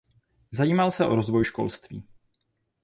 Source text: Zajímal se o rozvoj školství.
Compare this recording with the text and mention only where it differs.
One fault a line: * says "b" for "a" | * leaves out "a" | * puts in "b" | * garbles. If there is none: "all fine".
all fine